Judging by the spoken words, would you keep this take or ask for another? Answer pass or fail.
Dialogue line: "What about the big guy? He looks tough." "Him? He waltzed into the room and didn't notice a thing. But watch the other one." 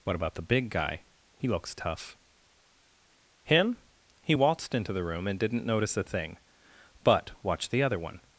pass